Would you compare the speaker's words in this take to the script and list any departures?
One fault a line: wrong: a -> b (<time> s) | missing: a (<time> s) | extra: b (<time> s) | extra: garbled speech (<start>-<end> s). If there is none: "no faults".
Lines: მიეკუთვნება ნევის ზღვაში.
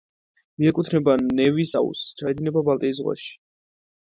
extra: აუზს ჩაედინება ბალტიის (1.8 s)